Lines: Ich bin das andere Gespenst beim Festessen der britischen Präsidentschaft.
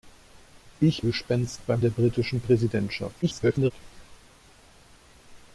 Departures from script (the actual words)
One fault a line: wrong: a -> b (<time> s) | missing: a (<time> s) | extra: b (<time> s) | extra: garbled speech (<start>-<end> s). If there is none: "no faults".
missing: bin das andere (1.0 s)
missing: Festessen (1.8 s)
extra: garbled speech (3.2-3.7 s)